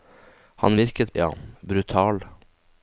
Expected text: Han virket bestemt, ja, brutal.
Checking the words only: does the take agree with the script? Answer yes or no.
no